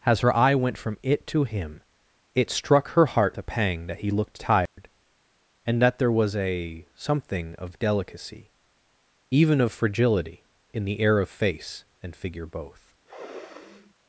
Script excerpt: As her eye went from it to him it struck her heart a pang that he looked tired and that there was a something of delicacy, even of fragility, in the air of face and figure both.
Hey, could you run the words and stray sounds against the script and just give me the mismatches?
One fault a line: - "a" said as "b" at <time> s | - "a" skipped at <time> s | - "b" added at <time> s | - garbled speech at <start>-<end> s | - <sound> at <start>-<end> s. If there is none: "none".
- dropout at 4.7-4.8 s
- sniff at 13.1-13.9 s